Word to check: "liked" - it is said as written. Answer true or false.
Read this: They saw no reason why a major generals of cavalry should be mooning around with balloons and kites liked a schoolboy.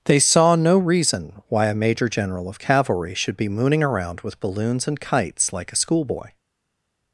false